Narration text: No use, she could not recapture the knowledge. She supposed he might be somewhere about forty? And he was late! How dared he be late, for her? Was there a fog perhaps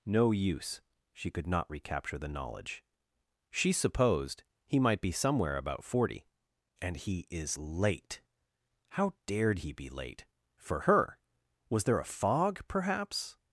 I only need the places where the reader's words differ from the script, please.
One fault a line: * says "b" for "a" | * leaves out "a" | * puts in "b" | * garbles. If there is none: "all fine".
* says "is" for "was"